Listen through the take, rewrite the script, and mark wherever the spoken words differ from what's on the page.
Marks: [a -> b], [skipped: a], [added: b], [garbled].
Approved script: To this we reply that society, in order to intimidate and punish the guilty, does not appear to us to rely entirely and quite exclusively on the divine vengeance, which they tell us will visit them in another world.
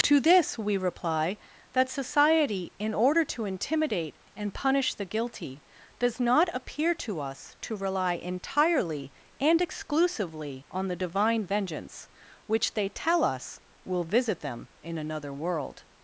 To this we reply that society, in order to intimidate and punish the guilty, does not appear to us to rely entirely and [skipped: quite] exclusively on the divine vengeance, which they tell us will visit them in another world.